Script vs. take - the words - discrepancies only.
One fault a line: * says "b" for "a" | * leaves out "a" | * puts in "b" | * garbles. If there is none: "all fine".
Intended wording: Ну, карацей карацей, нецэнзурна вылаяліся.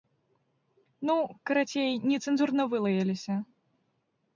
* leaves out "карацей"